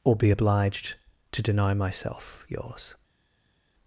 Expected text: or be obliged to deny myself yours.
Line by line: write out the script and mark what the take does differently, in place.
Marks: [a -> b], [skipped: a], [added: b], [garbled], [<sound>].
or be obliged to deny myself yours.